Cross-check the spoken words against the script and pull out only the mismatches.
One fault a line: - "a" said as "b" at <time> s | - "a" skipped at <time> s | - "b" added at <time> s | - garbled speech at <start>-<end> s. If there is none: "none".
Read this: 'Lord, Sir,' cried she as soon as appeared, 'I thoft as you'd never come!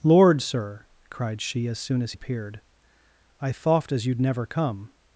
none